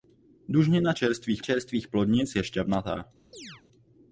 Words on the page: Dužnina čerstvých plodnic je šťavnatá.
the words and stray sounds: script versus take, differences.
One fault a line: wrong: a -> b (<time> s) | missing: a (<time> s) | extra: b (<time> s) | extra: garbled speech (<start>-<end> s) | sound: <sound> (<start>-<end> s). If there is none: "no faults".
extra: čerstvých (1.4 s)
sound: chirp (3.3-3.6 s)